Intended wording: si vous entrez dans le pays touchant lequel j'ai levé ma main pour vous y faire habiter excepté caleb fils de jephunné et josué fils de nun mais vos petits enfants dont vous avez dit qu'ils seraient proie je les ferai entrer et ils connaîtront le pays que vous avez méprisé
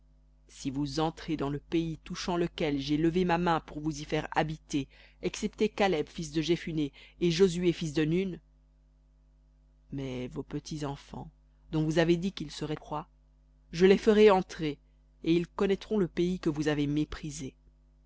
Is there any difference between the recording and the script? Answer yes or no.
no